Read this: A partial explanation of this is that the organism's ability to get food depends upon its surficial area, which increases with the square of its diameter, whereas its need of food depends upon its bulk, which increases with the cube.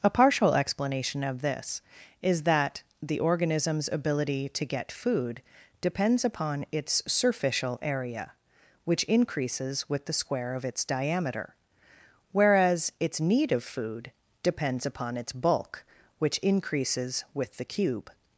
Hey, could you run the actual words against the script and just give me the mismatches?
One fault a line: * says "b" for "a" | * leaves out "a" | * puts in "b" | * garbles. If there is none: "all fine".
all fine